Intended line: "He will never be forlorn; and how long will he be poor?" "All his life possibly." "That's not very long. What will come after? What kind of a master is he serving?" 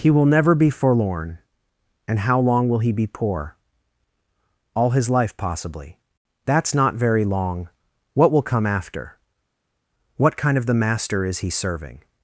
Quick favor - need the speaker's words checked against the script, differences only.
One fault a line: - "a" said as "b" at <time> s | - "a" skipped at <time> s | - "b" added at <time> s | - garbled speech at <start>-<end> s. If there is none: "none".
- "a" said as "the" at 10.7 s